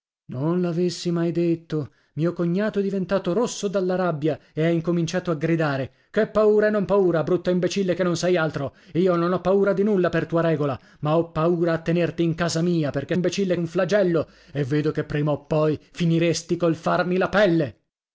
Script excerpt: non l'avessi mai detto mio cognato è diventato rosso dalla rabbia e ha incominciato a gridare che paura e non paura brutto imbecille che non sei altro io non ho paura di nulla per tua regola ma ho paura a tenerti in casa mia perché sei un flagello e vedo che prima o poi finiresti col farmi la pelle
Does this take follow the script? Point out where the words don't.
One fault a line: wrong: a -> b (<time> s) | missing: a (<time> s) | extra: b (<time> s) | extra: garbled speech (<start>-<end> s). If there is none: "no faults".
wrong: sei -> imbecille (13.1 s)